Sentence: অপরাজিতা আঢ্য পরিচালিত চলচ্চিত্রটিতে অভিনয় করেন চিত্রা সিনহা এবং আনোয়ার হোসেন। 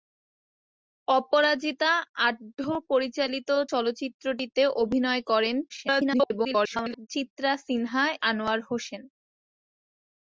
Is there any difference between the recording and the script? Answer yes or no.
yes